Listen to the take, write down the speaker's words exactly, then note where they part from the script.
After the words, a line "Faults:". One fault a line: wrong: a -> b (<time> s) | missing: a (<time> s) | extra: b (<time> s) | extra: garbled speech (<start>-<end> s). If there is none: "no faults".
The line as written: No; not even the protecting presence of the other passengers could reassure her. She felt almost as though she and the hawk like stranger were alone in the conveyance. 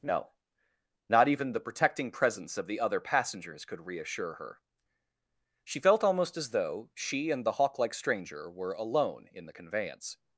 No; not even the protecting presence of the other passengers could reassure her. She felt almost as though she and the hawk like stranger were alone in the conveyance.
Faults:
no faults